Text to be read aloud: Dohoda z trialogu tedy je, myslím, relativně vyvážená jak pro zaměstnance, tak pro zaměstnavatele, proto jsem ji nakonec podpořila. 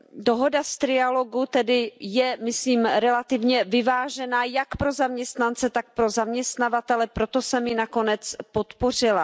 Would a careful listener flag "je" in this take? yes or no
no